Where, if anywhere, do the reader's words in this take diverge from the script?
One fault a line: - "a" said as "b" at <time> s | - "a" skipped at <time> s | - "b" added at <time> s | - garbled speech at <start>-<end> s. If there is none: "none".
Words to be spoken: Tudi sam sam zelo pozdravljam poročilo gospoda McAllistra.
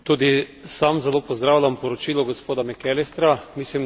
- "sam" skipped at 1.0 s